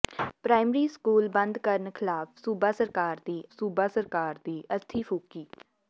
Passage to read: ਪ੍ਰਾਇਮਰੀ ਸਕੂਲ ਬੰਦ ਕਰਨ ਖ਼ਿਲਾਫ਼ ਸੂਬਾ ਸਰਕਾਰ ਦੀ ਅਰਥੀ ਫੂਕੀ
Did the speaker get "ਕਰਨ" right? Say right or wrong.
right